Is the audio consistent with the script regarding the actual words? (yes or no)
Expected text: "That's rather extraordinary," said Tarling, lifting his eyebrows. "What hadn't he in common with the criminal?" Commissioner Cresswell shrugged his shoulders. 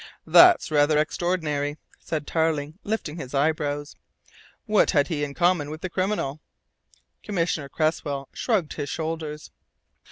no